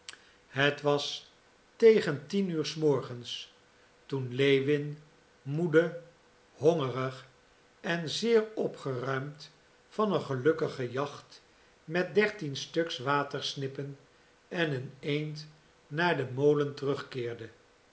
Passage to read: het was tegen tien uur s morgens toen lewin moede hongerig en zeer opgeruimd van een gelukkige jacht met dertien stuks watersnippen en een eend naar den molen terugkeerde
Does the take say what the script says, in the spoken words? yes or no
yes